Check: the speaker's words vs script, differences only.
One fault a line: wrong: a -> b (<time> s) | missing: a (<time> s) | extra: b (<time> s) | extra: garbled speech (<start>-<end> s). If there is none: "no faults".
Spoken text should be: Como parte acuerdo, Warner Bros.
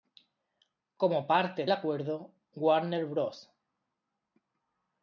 no faults